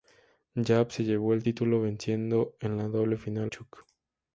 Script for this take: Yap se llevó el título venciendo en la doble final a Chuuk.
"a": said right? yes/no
no